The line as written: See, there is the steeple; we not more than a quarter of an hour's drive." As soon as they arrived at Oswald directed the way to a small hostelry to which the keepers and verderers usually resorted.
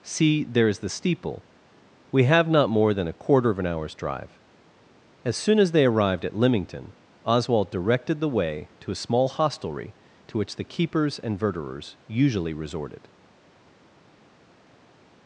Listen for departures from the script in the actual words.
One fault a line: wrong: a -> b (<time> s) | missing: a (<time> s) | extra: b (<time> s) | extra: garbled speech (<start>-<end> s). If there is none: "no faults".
extra: have (2.2 s)
extra: Lymington (6.3 s)